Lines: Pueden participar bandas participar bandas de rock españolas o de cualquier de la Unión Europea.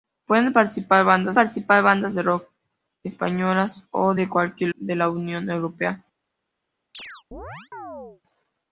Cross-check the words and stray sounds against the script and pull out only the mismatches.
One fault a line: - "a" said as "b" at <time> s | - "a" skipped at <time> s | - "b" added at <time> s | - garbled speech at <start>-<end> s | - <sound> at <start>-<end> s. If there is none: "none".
- chirp at 6.9-8.2 s